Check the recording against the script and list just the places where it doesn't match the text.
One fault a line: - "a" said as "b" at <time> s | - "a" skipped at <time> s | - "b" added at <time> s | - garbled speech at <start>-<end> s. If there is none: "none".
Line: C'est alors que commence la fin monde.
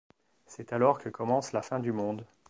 - "du" added at 1.8 s